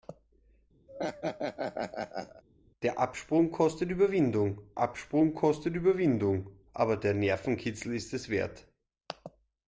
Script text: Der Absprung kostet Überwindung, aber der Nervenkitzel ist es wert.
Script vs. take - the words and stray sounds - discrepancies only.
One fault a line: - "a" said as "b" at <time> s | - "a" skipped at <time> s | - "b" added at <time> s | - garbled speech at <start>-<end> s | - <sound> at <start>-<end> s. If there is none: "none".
- laugh at 0.9-2.4 s
- "Absprung kostet Überwindung" added at 4.8 s